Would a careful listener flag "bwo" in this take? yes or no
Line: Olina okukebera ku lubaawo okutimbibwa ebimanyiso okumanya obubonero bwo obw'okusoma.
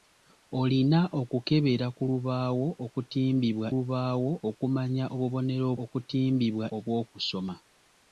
yes